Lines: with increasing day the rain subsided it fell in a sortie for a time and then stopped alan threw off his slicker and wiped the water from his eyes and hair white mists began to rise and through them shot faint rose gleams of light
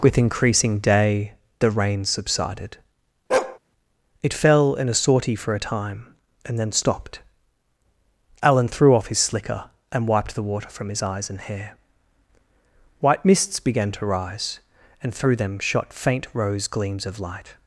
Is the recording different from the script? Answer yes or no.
no